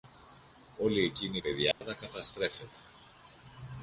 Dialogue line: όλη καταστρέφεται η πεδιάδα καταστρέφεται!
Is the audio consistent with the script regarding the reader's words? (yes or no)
no